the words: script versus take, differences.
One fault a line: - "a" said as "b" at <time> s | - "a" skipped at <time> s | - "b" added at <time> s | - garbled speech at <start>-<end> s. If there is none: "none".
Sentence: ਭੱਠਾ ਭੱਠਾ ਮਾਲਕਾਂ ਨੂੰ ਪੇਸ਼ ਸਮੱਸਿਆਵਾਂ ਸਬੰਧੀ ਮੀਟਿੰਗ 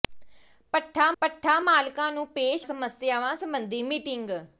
none